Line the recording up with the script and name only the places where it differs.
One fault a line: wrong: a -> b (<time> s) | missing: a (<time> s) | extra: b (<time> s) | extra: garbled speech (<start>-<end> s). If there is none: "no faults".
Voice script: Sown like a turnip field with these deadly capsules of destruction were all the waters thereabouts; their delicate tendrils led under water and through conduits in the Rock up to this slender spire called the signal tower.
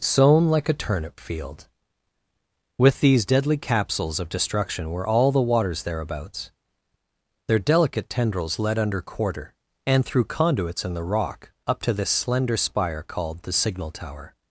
wrong: water -> quarter (9.0 s)